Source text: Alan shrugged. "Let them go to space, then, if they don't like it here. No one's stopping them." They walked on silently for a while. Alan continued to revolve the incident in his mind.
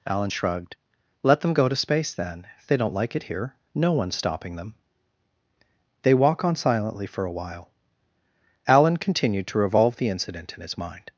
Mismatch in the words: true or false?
true